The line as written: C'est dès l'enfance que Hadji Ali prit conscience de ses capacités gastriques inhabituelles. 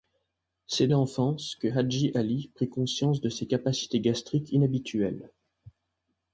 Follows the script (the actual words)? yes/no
no